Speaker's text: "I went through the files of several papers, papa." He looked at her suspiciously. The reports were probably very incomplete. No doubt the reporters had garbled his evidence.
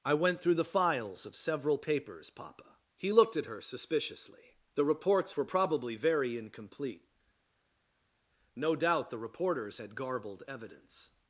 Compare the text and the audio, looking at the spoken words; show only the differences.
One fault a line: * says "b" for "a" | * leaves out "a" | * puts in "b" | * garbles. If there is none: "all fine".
* leaves out "his"